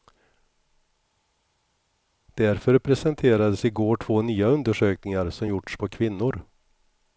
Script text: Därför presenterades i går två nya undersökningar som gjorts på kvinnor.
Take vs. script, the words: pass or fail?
pass